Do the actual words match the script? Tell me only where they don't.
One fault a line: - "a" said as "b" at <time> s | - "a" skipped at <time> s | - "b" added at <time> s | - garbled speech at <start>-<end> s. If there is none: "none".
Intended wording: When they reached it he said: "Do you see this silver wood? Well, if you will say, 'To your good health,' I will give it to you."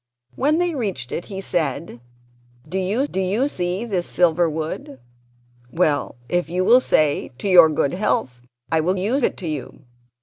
- "do you" added at 3.1 s
- "give" said as "you" at 8.9 s